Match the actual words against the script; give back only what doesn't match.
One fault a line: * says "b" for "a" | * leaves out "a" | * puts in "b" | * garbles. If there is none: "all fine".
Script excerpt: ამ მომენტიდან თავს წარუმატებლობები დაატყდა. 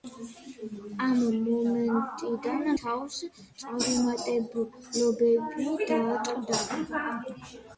all fine